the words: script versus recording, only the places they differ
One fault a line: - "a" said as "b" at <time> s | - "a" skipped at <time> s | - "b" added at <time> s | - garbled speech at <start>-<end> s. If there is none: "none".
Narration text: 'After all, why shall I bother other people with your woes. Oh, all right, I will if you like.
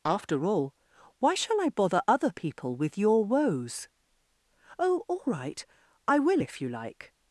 none